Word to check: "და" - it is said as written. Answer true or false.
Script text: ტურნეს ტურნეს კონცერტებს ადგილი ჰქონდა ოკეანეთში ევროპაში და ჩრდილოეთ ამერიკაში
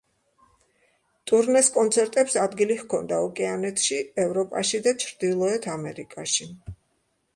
true